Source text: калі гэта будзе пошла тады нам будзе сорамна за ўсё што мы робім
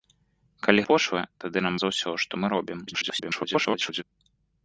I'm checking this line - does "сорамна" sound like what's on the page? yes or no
no